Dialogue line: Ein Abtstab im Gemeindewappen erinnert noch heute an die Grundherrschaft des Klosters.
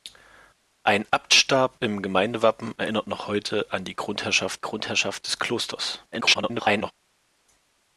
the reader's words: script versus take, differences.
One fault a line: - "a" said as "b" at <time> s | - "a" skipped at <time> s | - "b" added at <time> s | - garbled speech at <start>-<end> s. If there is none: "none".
- "Grundherrschaft" added at 4.6 s
- garbled speech at 6.1-6.9 s